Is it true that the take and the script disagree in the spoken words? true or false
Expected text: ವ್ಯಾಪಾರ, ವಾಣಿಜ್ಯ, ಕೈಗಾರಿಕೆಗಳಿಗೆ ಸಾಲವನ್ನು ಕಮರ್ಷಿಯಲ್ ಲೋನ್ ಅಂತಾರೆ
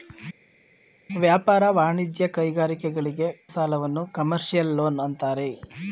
false